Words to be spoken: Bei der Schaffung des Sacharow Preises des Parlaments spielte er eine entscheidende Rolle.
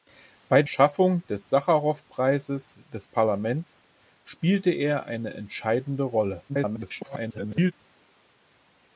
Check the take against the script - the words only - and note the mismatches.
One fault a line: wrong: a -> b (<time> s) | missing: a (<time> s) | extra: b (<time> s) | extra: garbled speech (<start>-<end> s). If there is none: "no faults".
missing: der (0.6 s)
extra: garbled speech (6.5-7.7 s)